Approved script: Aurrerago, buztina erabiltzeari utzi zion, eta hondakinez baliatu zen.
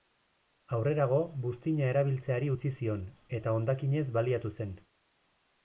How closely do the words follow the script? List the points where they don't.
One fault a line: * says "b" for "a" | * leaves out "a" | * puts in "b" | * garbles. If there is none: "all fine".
all fine